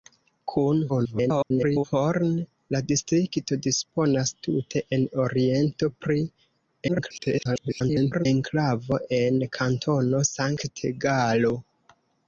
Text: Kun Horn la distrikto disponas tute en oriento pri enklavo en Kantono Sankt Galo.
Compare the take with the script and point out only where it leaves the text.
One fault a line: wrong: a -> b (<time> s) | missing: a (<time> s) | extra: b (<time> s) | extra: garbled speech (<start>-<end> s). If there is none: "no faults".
extra: garbled speech (0.9-1.8 s)
extra: garbled speech (6.9-8.3 s)